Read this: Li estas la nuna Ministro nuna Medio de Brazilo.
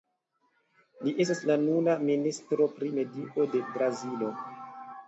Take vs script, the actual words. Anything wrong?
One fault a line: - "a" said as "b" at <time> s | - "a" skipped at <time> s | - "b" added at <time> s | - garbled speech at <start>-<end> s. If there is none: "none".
- "nuna" said as "pri" at 2.8 s